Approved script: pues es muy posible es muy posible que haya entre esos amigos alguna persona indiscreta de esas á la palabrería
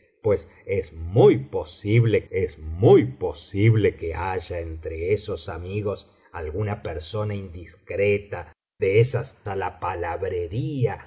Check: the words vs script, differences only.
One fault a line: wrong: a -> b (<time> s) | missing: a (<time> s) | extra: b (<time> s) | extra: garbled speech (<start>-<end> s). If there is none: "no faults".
no faults